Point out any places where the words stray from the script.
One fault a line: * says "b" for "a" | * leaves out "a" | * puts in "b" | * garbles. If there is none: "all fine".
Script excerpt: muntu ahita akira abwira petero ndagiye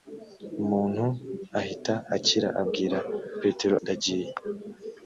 all fine